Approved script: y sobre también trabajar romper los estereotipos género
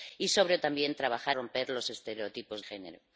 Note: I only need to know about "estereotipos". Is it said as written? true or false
true